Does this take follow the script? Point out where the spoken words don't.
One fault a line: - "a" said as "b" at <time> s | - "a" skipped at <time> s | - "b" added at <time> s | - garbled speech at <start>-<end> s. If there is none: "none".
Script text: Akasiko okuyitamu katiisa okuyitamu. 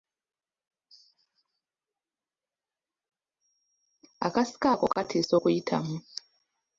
- "okuyitamu" said as "ako" at 4.7 s